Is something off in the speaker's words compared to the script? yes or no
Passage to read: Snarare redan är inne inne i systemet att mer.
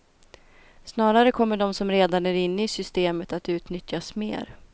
yes